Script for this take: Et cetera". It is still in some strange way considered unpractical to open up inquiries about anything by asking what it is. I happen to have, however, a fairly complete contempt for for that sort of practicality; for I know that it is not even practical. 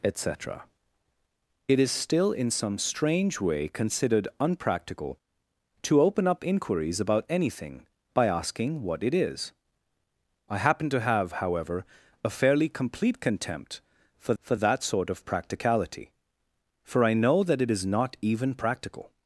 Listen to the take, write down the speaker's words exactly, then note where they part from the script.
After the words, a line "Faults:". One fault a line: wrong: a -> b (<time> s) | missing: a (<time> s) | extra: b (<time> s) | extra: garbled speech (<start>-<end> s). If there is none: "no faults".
Et cetera". It is still in some strange way considered unpractical to open up inquiries about anything by asking what it is. I happen to have, however, a fairly complete contempt for for that sort of practicality; for I know that it is not even practical.
Faults:
no faults